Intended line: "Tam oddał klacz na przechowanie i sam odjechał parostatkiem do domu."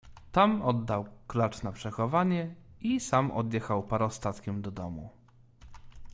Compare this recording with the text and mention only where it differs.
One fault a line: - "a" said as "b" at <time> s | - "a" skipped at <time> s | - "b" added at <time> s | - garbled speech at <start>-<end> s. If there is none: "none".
none